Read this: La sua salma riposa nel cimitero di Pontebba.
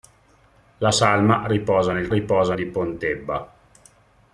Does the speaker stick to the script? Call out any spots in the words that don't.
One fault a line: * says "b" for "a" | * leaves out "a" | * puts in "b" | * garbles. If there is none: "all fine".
* leaves out "sua"
* says "riposa" for "cimitero"